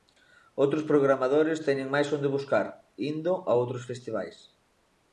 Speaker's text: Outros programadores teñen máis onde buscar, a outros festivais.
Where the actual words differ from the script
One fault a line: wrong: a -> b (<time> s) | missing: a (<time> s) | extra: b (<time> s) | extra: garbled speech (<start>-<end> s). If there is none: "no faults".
extra: indo (3.1 s)